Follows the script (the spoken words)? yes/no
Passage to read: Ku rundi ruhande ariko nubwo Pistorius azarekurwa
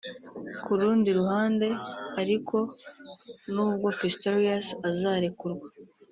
yes